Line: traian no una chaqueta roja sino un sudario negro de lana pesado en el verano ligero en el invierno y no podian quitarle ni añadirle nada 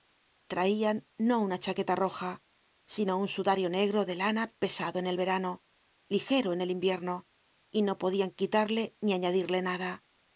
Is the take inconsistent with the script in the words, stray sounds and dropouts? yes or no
no